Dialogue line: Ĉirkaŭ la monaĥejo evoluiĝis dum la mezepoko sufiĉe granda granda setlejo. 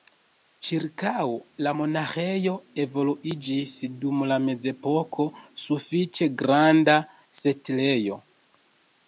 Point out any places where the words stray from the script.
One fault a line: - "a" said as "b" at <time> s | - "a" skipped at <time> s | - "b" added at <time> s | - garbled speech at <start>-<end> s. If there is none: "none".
- "granda" skipped at 7.0 s